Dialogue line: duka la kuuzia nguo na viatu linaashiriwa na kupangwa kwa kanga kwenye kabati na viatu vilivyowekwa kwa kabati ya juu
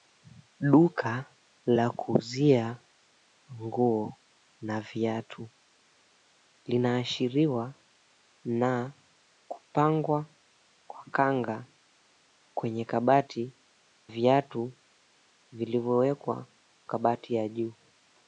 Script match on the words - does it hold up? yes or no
no